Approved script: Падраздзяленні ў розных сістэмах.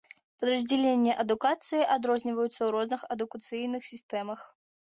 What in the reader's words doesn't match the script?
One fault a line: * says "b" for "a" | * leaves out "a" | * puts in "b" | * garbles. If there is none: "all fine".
* puts in "адукацыі адрозніваюцца"
* puts in "адукацыйных"